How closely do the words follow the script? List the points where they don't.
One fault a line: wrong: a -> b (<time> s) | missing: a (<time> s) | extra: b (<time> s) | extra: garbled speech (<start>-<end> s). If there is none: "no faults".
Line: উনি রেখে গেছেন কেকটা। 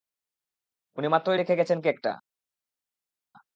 extra: মাত্রই (1.1 s)